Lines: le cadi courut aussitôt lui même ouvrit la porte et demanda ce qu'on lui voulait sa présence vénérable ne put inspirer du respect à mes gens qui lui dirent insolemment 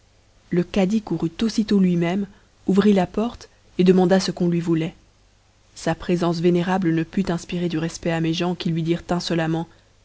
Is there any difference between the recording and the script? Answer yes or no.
no